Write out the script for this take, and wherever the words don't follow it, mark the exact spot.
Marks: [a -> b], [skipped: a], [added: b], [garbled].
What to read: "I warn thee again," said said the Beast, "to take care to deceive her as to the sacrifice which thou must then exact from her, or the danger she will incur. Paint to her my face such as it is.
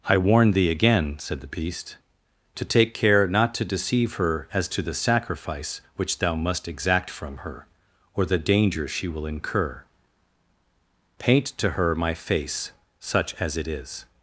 "I warn thee again," said [skipped: said] the Beast, "to take care [added: not] to deceive her as to the sacrifice which thou must [skipped: then] exact from her, or the danger she will incur. Paint to her my face such as it is.